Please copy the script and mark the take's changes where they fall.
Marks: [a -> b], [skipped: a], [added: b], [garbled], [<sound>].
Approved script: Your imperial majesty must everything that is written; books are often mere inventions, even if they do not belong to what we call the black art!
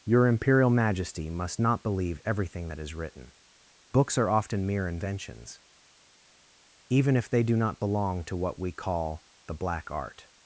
Your imperial majesty must [added: not believe] everything that is written; books are often mere inventions, even if they do not belong to what we call the black art!